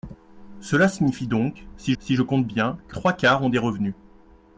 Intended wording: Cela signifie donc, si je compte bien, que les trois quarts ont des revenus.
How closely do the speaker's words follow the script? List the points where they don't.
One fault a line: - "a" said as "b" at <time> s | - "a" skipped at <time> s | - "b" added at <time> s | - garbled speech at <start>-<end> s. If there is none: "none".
- "si" added at 2.0 s
- "les" skipped at 3.0 s